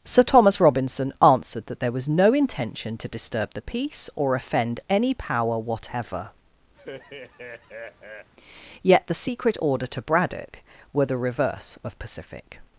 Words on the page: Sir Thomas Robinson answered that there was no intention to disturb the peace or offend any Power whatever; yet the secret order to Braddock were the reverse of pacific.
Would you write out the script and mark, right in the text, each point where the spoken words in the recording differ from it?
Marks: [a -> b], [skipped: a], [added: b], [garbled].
Sir Thomas Robinson answered that there was no intention to disturb the peace or offend any Power whatever; yet the secret order to Braddock were the reverse of pacific.